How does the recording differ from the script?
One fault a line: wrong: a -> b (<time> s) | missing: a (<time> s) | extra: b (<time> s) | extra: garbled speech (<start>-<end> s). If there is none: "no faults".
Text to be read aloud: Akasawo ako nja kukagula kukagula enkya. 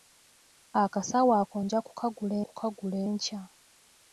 no faults